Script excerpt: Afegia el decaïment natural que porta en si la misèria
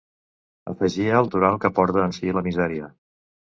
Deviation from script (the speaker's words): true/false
true